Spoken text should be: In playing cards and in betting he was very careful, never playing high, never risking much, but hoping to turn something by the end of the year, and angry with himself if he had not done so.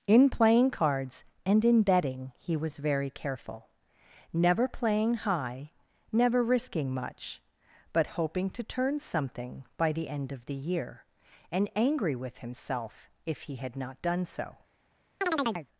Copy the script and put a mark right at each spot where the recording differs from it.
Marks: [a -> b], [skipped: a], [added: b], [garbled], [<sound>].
In playing cards and in betting he was very careful, never playing high, never risking much, but hoping to turn something by the end of the year, and angry with himself if he had not done so. [chirp]